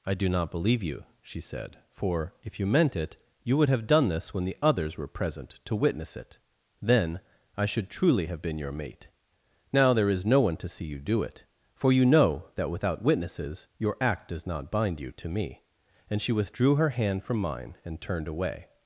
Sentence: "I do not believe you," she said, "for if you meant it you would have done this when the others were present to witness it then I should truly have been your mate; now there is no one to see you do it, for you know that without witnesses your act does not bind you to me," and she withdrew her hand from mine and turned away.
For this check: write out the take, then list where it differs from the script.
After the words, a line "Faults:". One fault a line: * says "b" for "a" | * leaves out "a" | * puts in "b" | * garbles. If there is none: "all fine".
"I do not believe you," she said, "for if you meant it you would have done this when the others were present to witness it then I should truly have been your mate; now there is no one to see you do it, for you know that without witnesses your act does not bind you to me," and she withdrew her hand from mine and turned away.
Faults:
all fine